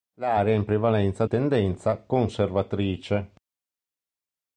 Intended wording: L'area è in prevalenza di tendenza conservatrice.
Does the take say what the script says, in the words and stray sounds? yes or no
no